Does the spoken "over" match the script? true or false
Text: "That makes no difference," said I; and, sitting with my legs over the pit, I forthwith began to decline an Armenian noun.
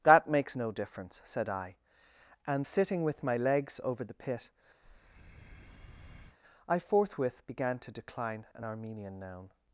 true